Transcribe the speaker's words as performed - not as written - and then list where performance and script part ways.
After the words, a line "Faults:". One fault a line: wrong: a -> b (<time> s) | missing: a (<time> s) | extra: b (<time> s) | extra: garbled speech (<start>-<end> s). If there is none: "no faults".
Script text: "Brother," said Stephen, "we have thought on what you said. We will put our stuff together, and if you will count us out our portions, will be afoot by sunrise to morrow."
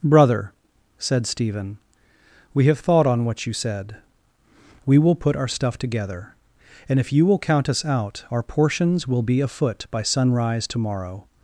"Brother," said Stephen, "we have thought on what you said. We will put our stuff together, and if you will count us out our portions, will be afoot by sunrise to morrow."
Faults:
no faults